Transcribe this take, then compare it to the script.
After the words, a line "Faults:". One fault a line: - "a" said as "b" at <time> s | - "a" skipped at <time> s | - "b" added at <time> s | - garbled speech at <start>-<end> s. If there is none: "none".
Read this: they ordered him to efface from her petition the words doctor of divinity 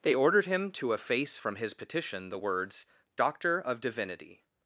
they ordered him to efface from his petition the words doctor of divinity
Faults:
- "her" said as "his" at 1.6 s